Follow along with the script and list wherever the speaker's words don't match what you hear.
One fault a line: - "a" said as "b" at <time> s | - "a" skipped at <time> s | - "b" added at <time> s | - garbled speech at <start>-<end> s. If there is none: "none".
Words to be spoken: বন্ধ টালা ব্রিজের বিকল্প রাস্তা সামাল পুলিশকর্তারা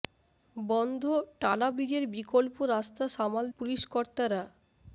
none